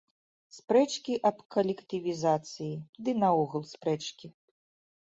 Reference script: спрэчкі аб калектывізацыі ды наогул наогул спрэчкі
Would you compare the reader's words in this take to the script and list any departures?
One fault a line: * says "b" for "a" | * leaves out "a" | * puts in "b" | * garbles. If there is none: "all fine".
* leaves out "наогул"